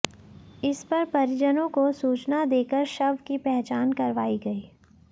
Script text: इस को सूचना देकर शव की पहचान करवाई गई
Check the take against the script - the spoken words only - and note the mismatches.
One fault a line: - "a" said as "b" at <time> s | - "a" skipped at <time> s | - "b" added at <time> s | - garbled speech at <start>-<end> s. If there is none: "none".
- "पर परिजनों" added at 0.8 s